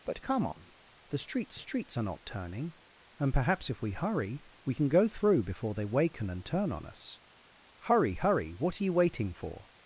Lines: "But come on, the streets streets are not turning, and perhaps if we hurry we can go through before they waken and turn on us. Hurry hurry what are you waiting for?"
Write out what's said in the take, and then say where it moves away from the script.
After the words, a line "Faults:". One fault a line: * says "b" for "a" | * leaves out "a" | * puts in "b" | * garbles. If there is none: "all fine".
"But come on, the streets streets are not turning, and perhaps if we hurry we can go through before they waken and turn on us. Hurry hurry what are you waiting for?"
Faults:
all fine